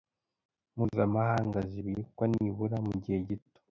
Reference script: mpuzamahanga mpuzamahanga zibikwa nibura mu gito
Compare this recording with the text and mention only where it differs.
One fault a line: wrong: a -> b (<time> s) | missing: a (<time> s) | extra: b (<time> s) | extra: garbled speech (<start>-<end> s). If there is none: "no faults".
missing: mpuzamahanga (1.6 s)
extra: gihe (3.0 s)